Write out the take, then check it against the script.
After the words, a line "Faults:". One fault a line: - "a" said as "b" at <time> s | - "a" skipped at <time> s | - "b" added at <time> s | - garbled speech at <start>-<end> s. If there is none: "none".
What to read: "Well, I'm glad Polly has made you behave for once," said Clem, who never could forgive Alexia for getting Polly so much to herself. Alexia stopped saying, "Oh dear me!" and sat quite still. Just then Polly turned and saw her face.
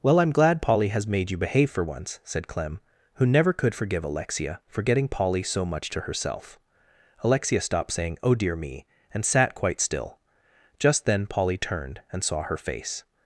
"Well, I'm glad Polly has made you behave for once," said Clem, who never could forgive Alexia for getting Polly so much to herself. Alexia stopped saying, "Oh dear me!" and sat quite still. Just then Polly turned and saw her face.
Faults:
none